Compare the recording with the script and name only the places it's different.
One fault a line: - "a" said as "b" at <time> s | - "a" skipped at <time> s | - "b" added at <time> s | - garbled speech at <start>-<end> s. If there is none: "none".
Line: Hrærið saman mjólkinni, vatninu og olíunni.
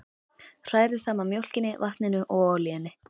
none